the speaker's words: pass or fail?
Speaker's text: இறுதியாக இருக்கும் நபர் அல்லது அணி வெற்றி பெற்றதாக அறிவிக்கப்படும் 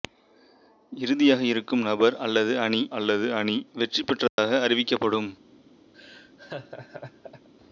fail